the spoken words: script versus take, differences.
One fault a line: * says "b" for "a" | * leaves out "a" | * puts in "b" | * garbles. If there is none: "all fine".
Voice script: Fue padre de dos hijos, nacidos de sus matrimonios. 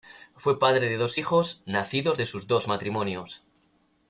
* puts in "dos"